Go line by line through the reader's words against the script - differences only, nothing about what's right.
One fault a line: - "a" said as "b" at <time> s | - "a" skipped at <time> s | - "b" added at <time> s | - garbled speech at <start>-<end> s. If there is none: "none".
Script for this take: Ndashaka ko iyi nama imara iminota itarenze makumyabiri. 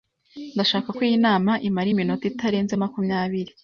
none